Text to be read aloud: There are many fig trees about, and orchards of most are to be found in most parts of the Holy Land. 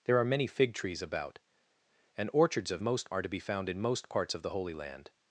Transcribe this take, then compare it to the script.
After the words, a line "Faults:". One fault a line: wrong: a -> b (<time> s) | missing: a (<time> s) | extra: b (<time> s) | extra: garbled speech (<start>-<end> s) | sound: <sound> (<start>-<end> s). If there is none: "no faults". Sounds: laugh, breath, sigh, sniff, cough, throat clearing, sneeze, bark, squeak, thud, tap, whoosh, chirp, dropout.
There are many fig trees about, and orchards of most are to be found in most parts of the Holy Land.
Faults:
no faults